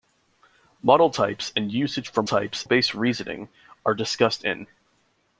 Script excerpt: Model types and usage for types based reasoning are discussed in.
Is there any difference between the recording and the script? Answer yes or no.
no